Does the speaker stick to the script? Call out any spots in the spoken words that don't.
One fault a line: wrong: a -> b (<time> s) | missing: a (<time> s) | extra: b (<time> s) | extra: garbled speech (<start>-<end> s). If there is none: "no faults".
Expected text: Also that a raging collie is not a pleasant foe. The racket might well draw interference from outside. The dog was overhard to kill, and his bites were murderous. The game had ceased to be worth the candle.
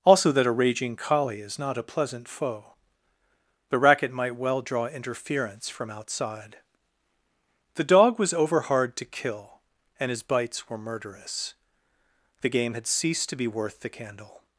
no faults